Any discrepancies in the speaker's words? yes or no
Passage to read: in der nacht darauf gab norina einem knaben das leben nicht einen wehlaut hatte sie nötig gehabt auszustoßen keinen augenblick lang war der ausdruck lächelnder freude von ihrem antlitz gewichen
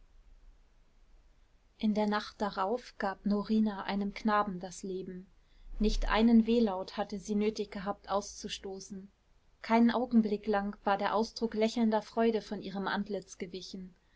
no